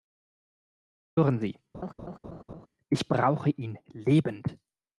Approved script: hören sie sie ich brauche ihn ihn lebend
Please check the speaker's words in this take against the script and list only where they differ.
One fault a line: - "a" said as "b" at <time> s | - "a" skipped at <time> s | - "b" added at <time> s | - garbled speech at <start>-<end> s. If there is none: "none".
- "sie" skipped at 1.6 s
- "ihn" skipped at 3.8 s